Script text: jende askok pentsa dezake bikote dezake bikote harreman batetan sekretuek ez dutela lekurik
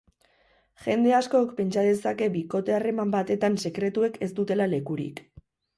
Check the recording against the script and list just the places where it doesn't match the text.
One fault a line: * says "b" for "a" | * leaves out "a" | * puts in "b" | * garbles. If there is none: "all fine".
* leaves out "dezake bikote"